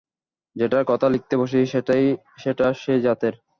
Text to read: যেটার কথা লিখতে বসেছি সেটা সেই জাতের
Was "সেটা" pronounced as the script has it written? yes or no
yes